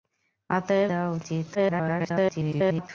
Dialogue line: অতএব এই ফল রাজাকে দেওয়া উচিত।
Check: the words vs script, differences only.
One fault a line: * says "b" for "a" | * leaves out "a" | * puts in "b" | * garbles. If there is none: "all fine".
* leaves out "এই ফল রাজাকে"
* garbles